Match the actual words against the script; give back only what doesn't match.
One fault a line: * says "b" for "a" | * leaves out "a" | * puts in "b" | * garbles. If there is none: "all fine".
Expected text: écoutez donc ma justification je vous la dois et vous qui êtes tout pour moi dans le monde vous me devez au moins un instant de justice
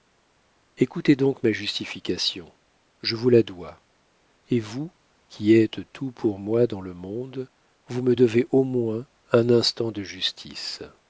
all fine